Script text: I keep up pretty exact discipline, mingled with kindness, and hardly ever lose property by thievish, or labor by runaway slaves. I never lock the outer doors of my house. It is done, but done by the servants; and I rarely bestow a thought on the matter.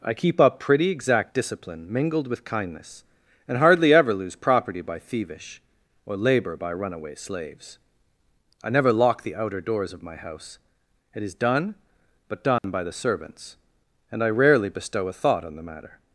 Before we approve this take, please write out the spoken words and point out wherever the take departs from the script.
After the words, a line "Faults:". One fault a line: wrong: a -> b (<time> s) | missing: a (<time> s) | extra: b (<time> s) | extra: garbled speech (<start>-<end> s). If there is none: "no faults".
I keep up pretty exact discipline, mingled with kindness, and hardly ever lose property by thievish, or labor by runaway slaves. I never lock the outer doors of my house. It is done, but done by the servants; and I rarely bestow a thought on the matter.
Faults:
no faults